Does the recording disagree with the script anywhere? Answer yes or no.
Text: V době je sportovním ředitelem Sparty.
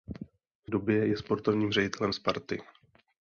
no